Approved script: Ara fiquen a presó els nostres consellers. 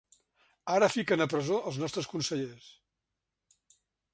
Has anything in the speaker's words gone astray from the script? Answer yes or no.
no